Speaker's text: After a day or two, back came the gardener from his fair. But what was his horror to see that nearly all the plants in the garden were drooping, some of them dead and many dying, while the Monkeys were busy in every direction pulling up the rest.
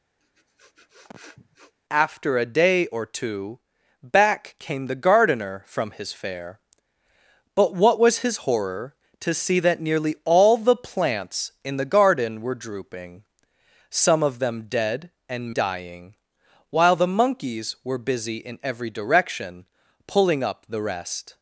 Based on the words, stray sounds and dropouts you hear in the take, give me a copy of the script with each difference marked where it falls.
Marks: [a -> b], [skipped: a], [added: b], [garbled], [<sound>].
[sniff] After a day or two, back came the gardener from his fair. But what was his horror to see that nearly all the plants in the garden were drooping, some of them dead and [skipped: many] dying, while the Monkeys were busy in every direction pulling up the rest.